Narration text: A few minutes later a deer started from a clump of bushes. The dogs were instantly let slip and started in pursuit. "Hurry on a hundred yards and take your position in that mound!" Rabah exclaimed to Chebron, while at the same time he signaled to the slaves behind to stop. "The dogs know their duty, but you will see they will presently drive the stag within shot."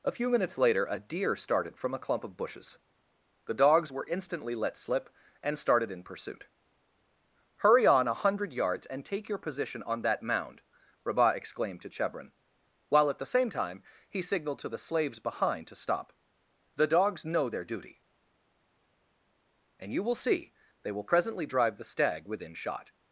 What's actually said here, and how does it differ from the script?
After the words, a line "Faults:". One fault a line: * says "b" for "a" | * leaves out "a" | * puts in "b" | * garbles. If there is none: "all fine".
A few minutes later a deer started from a clump of bushes. The dogs were instantly let slip and started in pursuit. "Hurry on a hundred yards and take your position on that mound!" Rabah exclaimed to Chebron, while at the same time he signaled to the slaves behind to stop. "The dogs know their duty, and you will see they will presently drive the stag within shot."
Faults:
* says "on" for "in"
* says "and" for "but"